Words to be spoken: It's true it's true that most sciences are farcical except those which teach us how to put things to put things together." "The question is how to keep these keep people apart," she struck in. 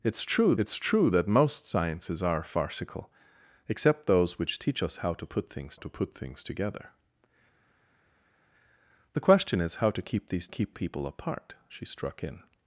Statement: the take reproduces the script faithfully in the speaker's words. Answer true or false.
true